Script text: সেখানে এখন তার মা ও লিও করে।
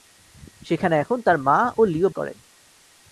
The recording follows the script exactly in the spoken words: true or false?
true